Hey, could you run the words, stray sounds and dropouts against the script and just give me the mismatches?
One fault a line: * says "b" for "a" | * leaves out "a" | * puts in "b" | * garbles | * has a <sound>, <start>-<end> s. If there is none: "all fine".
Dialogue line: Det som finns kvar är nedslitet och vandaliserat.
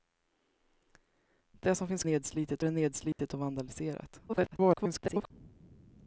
* says "nedslitet" for "kvar"
* has a dropout, 3.1-3.2 s
* garbles